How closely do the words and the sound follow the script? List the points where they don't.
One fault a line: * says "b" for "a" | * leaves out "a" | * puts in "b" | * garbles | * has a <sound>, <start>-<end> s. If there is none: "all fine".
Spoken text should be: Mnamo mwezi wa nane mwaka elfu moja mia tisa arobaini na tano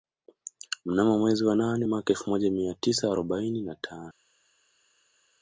all fine